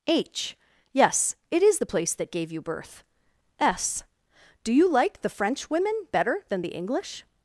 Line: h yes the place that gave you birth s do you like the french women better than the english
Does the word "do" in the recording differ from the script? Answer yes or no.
no